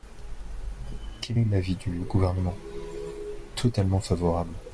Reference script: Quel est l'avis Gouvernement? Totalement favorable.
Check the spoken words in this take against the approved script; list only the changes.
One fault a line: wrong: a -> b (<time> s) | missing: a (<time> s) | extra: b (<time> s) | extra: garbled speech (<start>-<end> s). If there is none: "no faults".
extra: du (1.7 s)